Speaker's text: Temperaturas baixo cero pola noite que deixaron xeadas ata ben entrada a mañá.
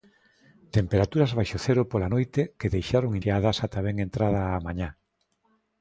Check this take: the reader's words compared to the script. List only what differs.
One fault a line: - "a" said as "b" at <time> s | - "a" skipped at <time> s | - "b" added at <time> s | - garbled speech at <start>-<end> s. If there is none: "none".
none